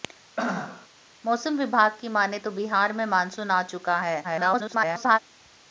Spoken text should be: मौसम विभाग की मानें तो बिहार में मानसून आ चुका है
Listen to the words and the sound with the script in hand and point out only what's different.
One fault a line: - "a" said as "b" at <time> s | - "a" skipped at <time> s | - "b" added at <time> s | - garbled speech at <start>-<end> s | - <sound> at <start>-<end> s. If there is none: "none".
- throat clearing at 0.4-0.9 s
- garbled speech at 4.2-5.2 s